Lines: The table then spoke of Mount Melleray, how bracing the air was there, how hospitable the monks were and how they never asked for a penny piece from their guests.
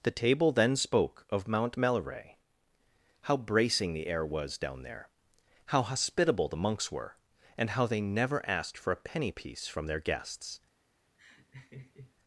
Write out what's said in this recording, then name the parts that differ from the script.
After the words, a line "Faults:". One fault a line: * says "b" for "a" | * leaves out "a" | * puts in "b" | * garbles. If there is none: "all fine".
The table then spoke of Mount Melleray, how bracing the air was down there, how hospitable the monks were and how they never asked for a penny piece from their guests.
Faults:
* puts in "down"